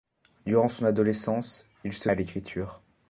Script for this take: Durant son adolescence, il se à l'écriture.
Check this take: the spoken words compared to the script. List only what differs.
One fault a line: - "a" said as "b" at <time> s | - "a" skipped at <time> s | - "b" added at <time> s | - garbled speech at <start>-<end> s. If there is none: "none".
none